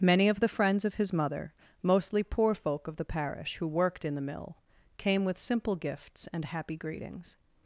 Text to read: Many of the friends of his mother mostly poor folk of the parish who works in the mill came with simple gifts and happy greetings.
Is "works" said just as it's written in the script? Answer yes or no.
no